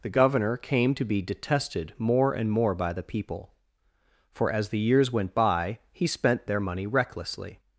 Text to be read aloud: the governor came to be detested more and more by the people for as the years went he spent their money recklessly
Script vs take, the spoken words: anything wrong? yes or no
yes